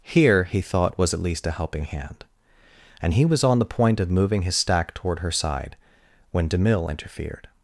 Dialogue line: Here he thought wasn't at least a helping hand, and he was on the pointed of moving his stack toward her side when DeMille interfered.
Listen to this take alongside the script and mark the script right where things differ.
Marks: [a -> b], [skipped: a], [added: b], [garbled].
Here he thought [wasn't -> was] at least a helping hand, and he was on the [pointed -> point] of moving his stack toward her side when DeMille interfered.